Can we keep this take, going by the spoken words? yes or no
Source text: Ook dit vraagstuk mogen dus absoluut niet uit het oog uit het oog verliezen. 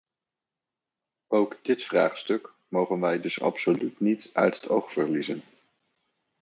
no